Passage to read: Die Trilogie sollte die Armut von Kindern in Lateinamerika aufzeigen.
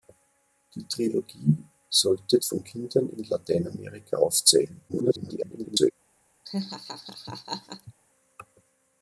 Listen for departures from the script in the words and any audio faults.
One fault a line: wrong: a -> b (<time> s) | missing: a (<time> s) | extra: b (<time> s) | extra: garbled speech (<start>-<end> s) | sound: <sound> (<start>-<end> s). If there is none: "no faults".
missing: die Armut (2.4 s)
extra: garbled speech (4.9-5.9 s)
sound: laugh (6.5-7.9 s)